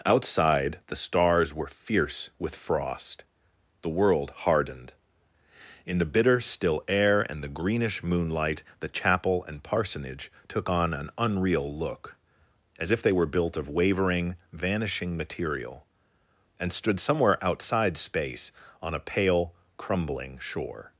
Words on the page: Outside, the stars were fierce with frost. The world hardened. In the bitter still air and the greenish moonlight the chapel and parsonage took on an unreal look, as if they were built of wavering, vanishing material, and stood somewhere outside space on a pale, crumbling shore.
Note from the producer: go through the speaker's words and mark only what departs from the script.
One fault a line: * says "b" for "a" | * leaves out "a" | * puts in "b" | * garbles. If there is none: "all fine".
all fine